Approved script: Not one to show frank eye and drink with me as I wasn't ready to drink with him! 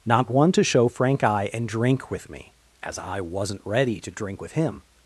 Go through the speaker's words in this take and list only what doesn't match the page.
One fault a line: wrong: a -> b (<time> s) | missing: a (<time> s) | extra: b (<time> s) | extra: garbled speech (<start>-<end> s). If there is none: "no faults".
no faults